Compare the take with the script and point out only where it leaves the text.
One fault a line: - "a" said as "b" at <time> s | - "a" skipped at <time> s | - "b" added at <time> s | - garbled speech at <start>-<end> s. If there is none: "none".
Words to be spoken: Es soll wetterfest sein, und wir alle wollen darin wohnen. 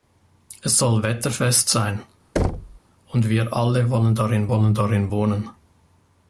- "wollen darin" added at 4.5 s